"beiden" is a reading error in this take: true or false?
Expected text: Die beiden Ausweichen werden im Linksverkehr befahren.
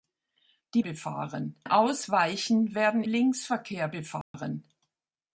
true